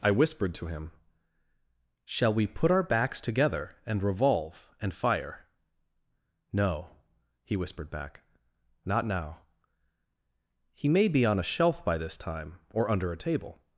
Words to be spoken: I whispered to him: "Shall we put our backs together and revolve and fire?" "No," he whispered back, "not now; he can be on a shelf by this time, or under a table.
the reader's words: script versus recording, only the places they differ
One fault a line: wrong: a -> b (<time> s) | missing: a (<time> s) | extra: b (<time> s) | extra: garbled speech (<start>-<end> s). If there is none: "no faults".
wrong: can -> may (10.9 s)